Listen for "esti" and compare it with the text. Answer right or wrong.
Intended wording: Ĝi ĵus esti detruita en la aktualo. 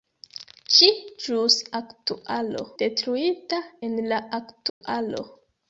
wrong